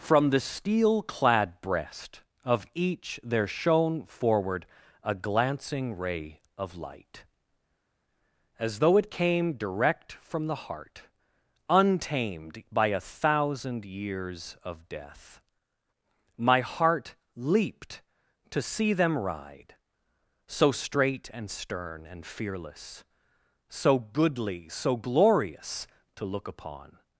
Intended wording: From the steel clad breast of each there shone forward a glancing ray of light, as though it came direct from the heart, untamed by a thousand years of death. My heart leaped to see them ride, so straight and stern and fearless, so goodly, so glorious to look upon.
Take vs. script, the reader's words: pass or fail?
pass